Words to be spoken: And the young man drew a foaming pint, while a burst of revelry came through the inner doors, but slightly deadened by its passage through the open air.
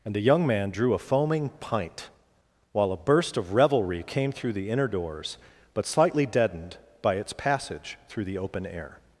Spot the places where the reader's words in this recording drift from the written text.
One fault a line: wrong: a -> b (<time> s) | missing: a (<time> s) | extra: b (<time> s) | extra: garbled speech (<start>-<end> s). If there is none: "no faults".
no faults